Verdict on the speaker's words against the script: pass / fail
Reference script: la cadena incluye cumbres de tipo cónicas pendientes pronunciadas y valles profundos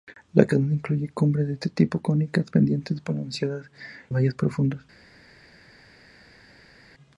fail